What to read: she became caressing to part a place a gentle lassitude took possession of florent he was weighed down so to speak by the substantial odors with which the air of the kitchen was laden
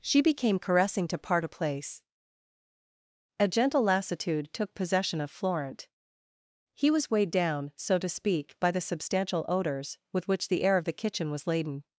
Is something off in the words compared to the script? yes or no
no